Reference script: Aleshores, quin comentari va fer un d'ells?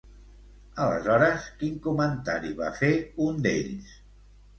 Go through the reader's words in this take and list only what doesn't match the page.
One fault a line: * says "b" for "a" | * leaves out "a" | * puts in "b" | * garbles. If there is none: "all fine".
all fine